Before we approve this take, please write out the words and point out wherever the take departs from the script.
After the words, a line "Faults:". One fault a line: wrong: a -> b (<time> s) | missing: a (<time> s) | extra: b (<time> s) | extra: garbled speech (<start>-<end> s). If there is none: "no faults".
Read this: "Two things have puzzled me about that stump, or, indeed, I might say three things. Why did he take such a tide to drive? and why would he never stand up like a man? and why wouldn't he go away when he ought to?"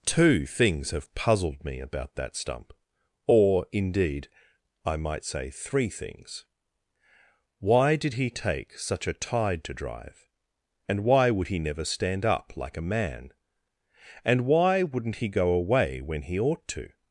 "Two things have puzzled me about that stump, or, indeed, I might say three things. Why did he take such a tide to drive? and why would he never stand up like a man? and why wouldn't he go away when he ought to?"
Faults:
no faults